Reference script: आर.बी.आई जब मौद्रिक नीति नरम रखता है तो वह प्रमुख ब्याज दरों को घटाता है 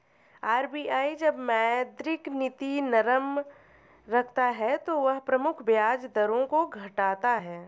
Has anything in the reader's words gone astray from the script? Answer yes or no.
no